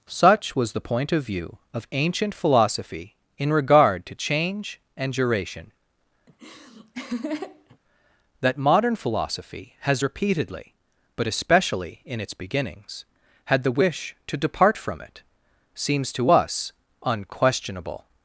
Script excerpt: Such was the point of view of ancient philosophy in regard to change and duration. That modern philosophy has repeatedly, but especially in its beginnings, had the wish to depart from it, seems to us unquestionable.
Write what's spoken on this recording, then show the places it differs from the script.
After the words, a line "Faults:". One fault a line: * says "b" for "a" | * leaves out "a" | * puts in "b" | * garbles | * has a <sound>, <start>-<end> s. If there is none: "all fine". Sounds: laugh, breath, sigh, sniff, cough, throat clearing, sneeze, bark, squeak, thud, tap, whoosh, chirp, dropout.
Such was the point of view of ancient philosophy in regard to change and duration. That modern philosophy has repeatedly, but especially in its beginnings, had the wish to depart from it, seems to us unquestionable.
Faults:
* has a laugh, 6.3-7.8 s